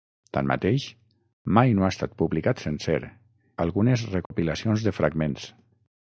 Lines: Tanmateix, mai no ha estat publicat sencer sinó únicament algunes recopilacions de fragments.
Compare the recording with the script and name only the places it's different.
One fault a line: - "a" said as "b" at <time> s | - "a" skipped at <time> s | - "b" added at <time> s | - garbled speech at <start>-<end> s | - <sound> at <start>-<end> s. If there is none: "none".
- "sinó únicament" skipped at 3.0 s
- dropout at 4.3-4.3 s